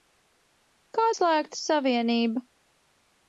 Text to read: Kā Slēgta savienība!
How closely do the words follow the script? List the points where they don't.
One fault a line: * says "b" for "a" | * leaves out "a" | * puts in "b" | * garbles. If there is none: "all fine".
all fine